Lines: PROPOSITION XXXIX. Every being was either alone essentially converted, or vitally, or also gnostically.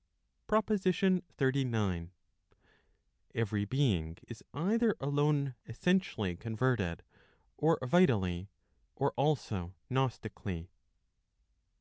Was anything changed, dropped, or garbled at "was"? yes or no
yes